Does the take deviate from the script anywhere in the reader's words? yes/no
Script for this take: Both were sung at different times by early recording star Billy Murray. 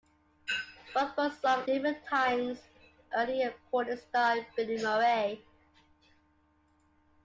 yes